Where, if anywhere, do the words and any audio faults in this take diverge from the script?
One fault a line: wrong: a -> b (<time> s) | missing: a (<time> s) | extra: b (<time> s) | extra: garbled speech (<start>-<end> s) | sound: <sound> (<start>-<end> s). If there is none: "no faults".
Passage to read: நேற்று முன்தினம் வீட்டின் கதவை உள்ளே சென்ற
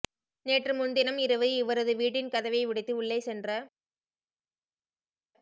extra: இரவு இவரது (1.2 s)
extra: உடைத்து (2.6 s)